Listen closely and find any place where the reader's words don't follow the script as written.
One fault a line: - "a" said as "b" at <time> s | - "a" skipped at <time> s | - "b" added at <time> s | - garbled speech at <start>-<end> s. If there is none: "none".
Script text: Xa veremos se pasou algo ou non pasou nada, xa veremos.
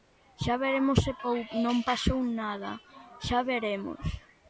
- "pasou algo" skipped at 1.1 s